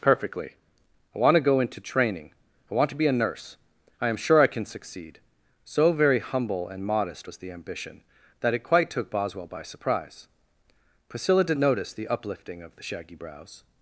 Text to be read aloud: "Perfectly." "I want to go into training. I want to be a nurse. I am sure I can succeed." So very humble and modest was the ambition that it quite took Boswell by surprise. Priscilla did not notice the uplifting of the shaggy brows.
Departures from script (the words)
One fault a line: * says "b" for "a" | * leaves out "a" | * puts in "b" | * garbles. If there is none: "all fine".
* leaves out "not"